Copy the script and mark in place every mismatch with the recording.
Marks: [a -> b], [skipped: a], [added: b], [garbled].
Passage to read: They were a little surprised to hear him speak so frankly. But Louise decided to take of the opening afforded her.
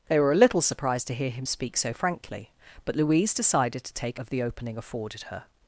They were a little surprised to hear him speak so frankly. But Louise decided to take of the opening afforded her.